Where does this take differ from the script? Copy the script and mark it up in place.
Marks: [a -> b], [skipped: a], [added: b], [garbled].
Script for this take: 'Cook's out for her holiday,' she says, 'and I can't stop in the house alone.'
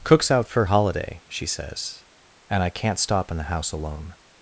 'Cook's out for [skipped: her] holiday,' she says, 'and I can't stop in the house alone.'